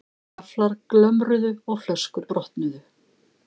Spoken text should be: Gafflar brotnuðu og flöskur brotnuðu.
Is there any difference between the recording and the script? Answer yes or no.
yes